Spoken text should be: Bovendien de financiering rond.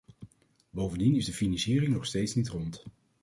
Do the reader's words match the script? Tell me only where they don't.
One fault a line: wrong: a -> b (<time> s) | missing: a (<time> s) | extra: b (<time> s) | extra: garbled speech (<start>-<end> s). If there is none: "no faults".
extra: is (1.1 s)
extra: nog steeds niet (1.9 s)